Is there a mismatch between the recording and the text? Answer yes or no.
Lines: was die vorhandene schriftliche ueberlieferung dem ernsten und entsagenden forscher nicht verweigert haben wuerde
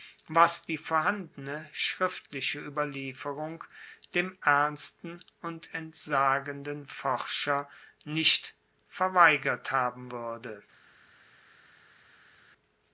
no